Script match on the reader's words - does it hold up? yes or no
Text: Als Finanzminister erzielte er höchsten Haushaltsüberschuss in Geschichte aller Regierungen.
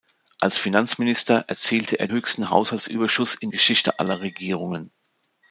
yes